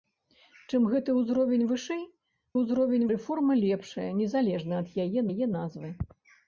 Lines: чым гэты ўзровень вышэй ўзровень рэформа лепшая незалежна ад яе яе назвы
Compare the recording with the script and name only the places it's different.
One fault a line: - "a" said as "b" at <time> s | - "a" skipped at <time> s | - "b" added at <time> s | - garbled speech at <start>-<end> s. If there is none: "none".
none